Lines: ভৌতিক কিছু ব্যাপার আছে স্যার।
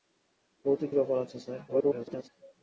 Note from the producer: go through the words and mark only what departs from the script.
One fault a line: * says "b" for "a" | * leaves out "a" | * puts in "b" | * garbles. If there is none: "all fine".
* leaves out "কিছু"
* garbles